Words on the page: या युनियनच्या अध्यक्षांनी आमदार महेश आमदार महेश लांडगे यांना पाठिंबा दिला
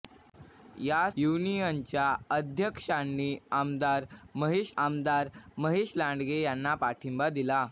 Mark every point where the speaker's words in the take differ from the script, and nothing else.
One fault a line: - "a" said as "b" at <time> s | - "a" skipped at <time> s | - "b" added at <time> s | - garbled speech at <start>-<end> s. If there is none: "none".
none